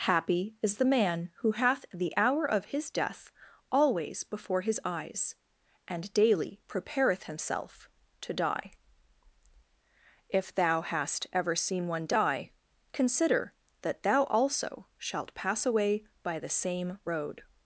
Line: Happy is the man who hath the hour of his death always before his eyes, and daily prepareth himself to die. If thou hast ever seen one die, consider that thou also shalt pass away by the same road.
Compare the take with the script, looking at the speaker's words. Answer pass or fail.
pass